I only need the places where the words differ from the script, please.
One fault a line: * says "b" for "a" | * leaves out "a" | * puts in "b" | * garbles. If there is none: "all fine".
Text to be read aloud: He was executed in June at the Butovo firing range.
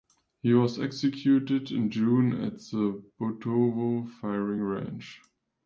all fine